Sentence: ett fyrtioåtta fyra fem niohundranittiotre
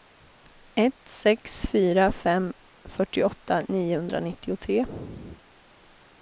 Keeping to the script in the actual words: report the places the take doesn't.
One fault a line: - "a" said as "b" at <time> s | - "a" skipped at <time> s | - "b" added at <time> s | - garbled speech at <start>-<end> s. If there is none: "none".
- "fyrtioåtta" said as "sex" at 1.1 s
- "fyrtioåtta" added at 2.8 s